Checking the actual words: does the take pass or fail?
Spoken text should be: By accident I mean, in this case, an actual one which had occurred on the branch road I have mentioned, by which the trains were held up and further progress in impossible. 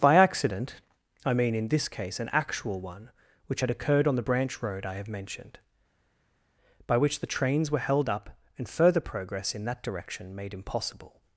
fail